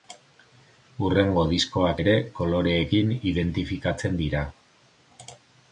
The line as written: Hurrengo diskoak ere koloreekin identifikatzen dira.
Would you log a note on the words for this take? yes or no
no